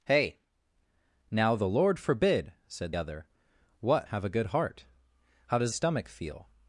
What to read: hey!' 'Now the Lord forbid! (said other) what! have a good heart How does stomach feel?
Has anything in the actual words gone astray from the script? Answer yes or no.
no